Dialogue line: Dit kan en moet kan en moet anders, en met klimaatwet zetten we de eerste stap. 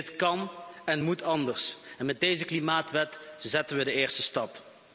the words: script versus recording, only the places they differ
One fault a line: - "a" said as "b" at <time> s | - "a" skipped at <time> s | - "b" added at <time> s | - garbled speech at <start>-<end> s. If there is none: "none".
- "kan en moet" skipped at 1.2 s
- "deze" added at 2.2 s